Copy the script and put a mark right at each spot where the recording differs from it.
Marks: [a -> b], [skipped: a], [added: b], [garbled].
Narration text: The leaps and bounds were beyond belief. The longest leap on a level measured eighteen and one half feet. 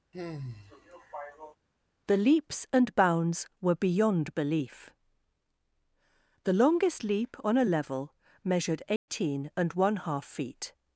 The leaps and bounds were beyond belief. The longest leap on a level measured eighteen and one half feet.